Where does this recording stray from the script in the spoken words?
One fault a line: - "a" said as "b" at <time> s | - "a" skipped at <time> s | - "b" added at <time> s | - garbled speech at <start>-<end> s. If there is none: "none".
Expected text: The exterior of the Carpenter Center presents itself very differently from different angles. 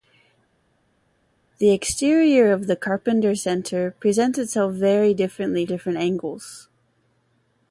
- "from" skipped at 5.6 s